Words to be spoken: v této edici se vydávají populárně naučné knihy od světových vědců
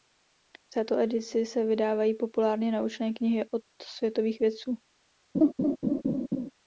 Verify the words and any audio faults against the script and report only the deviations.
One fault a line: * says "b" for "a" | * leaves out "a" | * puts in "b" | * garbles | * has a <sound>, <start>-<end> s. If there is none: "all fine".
* has a laugh, 5.3-6.5 s